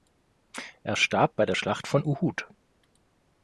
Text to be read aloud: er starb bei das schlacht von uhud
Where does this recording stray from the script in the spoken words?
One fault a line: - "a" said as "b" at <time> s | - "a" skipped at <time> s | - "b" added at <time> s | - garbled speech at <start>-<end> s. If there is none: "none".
- "das" said as "der" at 1.4 s